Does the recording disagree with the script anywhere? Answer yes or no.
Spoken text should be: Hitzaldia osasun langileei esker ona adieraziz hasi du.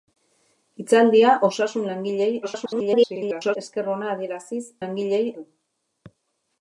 yes